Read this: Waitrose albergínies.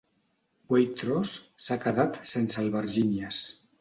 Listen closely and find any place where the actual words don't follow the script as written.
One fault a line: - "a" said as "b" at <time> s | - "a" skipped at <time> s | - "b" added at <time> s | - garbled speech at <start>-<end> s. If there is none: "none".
- "s'ha quedat sense" added at 1.6 s